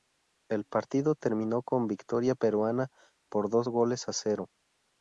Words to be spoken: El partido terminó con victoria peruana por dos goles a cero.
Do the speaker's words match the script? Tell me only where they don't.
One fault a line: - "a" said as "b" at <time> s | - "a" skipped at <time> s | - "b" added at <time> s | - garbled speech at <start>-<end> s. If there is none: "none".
none